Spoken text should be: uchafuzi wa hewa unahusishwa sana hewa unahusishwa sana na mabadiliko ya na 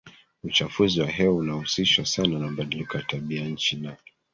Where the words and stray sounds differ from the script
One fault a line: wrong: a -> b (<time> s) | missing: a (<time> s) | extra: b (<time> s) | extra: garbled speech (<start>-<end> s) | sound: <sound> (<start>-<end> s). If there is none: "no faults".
missing: hewa unahusishwa sana (2.4 s)
extra: tabianchi (3.0 s)